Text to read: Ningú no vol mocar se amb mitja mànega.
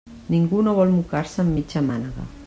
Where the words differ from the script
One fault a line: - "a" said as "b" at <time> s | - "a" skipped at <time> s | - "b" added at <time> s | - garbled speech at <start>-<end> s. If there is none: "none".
none